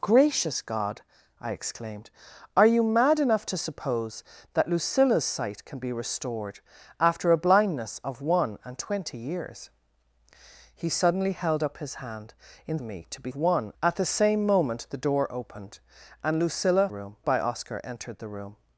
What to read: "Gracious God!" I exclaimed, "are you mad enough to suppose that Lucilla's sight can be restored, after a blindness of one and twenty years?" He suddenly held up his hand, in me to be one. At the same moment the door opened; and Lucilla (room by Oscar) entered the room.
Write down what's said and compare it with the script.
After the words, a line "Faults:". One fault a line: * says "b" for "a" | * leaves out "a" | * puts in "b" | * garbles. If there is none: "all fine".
"Gracious God!" I exclaimed, "are you mad enough to suppose that Lucilla's sight can be restored, after a blindness of one and twenty years?" He suddenly held up his hand, in me to be one. At the same moment the door opened; and Lucilla (room by Oscar) entered the room.
Faults:
all fine